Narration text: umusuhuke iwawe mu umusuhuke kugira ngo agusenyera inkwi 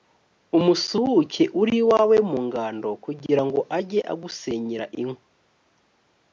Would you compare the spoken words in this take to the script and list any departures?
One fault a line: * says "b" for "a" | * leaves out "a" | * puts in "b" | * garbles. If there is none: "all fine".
* puts in "uri"
* says "ngando" for "umusuhuke"
* puts in "ajye"